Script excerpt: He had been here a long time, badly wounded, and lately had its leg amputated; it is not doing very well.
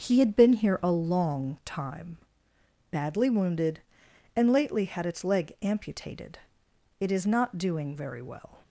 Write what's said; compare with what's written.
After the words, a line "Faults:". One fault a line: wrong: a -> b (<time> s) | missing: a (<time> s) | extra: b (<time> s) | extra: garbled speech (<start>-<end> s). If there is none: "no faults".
He had been here a long time, badly wounded, and lately had its leg amputated; it is not doing very well.
Faults:
no faults